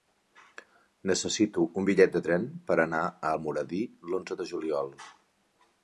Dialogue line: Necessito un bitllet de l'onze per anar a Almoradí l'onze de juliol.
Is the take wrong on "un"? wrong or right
right